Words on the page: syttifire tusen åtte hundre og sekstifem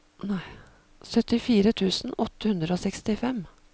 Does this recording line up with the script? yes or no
yes